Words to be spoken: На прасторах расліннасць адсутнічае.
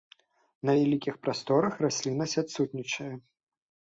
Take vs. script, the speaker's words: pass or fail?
fail